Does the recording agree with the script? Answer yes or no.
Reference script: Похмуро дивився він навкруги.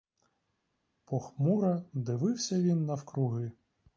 yes